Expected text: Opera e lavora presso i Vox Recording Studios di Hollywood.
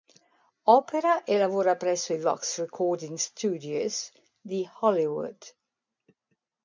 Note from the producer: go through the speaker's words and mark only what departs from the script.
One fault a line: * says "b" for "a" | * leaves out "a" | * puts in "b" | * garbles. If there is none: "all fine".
all fine